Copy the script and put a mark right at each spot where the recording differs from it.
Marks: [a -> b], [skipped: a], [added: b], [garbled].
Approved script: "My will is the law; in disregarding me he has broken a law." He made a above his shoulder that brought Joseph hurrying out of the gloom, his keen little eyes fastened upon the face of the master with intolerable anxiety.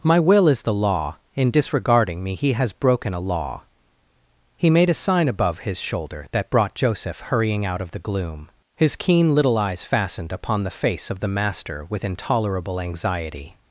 "My will is the law; in disregarding me he has broken a law." He made a [added: sign] above his shoulder that brought Joseph hurrying out of the gloom, his keen little eyes fastened upon the face of the master with intolerable anxiety.